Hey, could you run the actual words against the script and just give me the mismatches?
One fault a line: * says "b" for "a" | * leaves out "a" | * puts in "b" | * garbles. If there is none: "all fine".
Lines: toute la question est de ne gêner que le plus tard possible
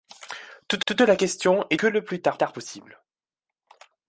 * puts in "toute"
* leaves out "de ne gêner"
* puts in "tard"